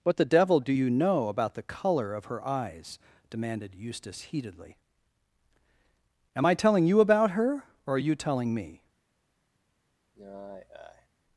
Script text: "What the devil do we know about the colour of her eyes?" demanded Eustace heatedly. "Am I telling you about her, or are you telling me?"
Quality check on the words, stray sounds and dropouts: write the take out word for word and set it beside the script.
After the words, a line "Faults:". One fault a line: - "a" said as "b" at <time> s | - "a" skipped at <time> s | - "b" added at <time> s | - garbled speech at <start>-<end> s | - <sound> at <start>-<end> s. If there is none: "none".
"What the devil do you know about the colour of her eyes?" demanded Eustace heatedly. "Am I telling you about her, or are you telling me?"
Faults:
- "we" said as "you" at 0.7 s
- sigh at 10.1-11.1 s